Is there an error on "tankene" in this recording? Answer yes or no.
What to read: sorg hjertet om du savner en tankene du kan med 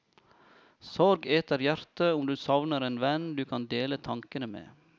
yes